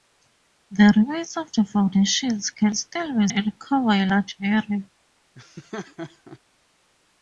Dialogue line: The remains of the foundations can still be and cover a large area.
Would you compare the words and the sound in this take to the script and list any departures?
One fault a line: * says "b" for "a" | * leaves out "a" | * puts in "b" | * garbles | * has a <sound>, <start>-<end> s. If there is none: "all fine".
* has a laugh, 5.3-6.4 s